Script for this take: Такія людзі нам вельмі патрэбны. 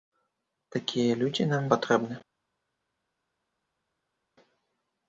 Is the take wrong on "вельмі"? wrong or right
wrong